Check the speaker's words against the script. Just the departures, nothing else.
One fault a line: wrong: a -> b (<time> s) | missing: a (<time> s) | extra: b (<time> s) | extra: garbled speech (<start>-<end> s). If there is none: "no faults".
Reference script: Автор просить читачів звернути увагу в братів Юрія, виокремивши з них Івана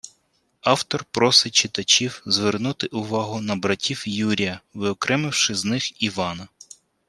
wrong: в -> на (3.4 s)